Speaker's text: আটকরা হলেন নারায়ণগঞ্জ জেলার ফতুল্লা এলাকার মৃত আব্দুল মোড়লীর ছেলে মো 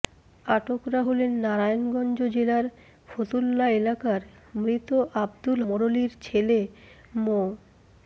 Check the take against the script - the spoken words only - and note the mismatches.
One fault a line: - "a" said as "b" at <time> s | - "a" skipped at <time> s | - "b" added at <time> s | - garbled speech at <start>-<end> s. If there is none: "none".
none